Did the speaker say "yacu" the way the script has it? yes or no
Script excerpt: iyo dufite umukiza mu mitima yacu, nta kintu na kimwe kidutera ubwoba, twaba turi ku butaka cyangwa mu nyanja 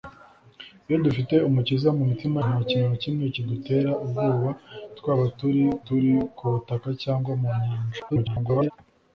no